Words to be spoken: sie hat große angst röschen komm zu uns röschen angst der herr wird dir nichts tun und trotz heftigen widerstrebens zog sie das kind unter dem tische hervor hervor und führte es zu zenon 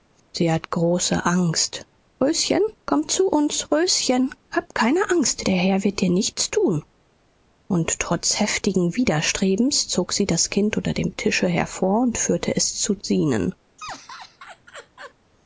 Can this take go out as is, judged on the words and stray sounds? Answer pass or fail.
fail